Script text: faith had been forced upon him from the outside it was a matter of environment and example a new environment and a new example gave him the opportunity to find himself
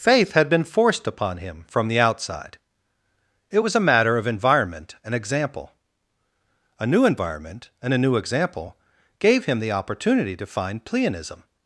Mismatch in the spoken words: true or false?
true